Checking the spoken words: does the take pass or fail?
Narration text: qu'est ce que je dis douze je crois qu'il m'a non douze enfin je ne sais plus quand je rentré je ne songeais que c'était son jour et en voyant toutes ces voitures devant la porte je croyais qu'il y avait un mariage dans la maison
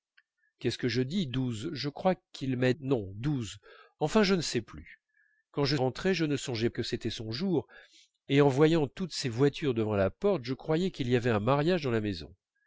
pass